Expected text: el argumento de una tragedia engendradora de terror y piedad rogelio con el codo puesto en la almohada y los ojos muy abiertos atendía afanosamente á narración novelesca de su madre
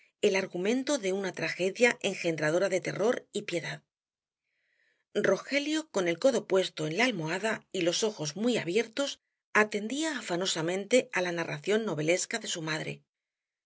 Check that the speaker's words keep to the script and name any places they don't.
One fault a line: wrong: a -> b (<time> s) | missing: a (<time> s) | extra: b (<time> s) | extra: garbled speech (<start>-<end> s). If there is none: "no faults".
extra: la (11.2 s)